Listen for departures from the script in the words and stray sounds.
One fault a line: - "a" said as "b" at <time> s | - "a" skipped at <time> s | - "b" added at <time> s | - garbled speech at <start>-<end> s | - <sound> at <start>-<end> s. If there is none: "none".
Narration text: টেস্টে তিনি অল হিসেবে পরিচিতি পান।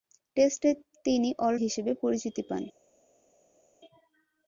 none